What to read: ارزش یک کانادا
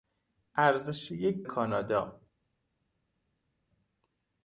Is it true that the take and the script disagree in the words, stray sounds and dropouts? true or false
false